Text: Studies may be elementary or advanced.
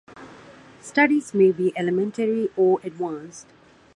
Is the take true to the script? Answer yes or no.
yes